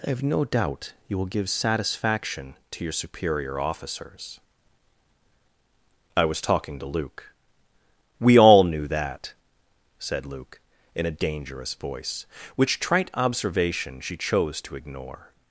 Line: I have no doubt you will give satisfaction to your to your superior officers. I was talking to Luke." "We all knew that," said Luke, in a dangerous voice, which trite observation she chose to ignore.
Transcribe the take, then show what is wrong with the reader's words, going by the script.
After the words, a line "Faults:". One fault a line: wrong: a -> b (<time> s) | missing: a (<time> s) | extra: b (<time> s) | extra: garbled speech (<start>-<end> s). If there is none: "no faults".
I have no doubt you will give satisfaction to your superior officers. I was talking to Luke." "We all knew that," said Luke, in a dangerous voice, which trite observation she chose to ignore.
Faults:
missing: to your (2.9 s)